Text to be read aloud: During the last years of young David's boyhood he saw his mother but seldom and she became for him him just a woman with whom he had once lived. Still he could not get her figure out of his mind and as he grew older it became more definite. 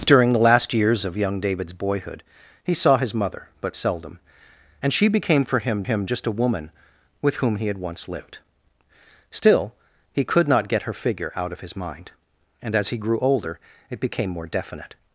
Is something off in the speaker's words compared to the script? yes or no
no